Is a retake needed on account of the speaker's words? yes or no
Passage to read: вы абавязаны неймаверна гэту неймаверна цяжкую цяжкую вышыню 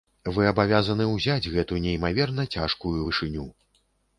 yes